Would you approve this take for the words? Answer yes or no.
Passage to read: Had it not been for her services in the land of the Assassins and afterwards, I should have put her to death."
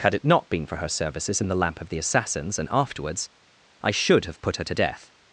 no